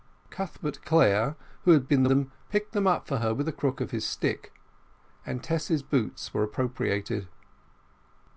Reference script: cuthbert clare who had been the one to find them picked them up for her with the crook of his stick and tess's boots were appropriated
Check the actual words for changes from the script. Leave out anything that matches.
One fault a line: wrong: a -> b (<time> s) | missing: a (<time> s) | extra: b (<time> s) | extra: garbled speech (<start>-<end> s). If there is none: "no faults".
missing: one to find (2.1 s)